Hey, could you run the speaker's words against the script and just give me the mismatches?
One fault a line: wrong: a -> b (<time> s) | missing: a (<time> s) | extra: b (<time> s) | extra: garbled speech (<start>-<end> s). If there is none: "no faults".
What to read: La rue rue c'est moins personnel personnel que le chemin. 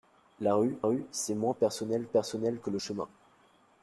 no faults